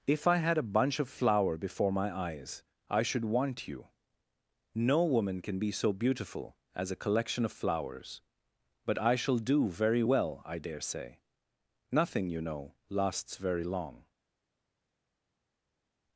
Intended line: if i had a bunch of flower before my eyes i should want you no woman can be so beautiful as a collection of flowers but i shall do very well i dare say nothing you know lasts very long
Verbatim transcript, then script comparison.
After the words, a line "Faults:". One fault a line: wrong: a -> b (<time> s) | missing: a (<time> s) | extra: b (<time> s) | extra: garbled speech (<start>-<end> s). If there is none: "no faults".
if i had a bunch of flower before my eyes i should want you no woman can be so beautiful as a collection of flowers but i shall do very well i dare say nothing you know lasts very long
Faults:
no faults